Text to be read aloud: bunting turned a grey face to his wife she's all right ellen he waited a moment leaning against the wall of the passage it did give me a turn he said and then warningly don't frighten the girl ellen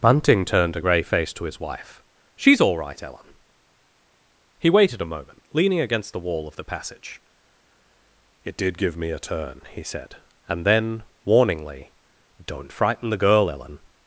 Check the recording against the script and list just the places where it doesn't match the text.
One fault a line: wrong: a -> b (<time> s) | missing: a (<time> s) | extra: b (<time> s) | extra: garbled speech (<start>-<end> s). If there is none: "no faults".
no faults